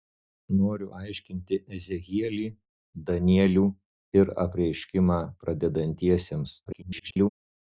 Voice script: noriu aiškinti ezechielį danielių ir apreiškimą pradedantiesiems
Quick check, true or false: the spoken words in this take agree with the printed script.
false